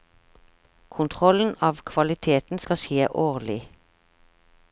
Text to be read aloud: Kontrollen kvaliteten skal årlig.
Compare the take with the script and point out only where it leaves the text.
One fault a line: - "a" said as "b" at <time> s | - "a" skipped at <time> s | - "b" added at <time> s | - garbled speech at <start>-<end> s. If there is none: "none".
- "av" added at 1.7 s
- "skje" added at 2.8 s